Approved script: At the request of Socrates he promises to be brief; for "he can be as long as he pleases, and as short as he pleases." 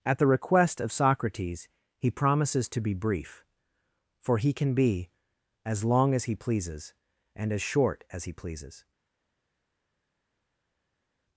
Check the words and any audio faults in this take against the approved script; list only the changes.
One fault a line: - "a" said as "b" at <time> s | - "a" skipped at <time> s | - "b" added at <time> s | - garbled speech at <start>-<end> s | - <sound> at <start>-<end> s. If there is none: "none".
none